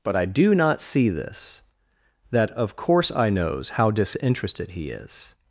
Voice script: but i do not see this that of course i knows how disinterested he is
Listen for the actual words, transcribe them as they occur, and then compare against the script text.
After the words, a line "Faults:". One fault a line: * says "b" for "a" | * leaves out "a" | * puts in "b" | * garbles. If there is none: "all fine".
but i do not see this that of course i knows how disinterested he is
Faults:
all fine